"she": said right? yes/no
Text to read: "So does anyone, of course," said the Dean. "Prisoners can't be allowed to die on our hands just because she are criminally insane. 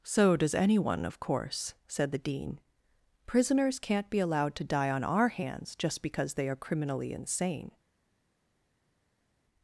no